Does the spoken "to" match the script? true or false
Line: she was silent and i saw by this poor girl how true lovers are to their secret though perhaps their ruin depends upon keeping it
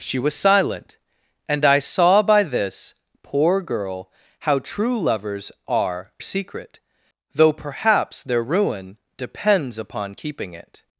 false